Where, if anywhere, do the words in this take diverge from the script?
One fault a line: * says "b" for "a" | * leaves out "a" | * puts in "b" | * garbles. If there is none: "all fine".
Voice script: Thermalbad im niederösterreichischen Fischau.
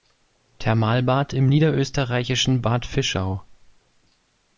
* puts in "Bad"